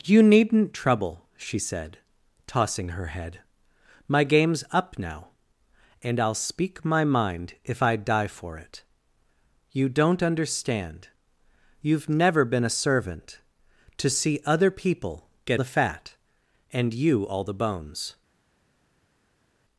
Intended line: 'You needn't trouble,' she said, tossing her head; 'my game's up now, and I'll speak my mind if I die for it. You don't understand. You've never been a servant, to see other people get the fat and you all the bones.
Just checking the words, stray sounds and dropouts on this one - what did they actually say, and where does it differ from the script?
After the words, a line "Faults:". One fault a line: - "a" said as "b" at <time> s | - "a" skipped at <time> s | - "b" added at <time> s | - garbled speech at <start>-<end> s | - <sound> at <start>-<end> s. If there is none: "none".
'You needn't trouble,' she said, tossing her head; 'my game's up now, and I'll speak my mind if I die for it. You don't understand. You've never been a servant, to see other people get the fat and you all the bones.
Faults:
none